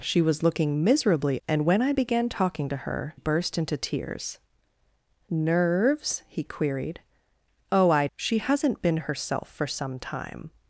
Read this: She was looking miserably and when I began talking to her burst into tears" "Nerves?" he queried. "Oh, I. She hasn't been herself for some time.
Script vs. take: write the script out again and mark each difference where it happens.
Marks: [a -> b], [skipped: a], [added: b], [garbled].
She was looking miserably and when I began talking to her burst into tears" "Nerves?" he queried. "Oh, I. She hasn't been herself for some time.